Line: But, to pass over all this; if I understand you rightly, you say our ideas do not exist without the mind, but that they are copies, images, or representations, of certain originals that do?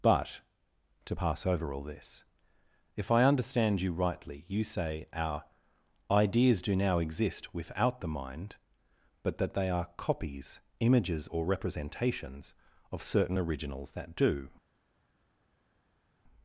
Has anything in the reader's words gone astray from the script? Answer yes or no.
yes